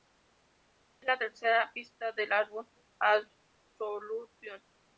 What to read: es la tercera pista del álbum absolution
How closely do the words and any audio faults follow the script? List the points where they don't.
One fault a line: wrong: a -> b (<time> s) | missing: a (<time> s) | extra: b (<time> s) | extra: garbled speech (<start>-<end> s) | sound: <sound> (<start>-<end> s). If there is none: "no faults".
no faults